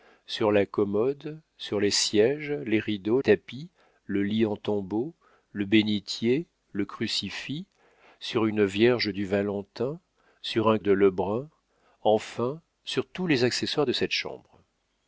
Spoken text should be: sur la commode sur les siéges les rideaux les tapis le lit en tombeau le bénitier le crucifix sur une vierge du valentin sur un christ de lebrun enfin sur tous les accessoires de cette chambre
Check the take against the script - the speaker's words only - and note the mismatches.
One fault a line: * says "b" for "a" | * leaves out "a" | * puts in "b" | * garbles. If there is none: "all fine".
* leaves out "les"
* leaves out "christ"